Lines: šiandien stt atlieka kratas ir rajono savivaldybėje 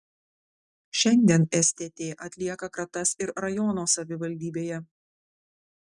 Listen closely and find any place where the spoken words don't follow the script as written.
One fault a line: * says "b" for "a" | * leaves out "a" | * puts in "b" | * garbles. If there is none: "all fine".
all fine